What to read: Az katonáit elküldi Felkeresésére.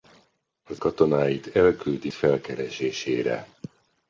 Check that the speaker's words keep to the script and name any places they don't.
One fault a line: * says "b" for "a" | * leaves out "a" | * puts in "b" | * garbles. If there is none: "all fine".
all fine